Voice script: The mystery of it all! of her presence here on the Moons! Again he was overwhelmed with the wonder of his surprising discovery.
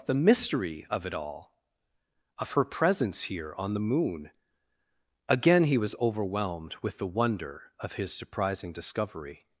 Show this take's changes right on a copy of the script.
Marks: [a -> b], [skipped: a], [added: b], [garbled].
The mystery of it all! of her presence here on the [Moons! -> Moon] Again he was overwhelmed with the wonder of his surprising discovery.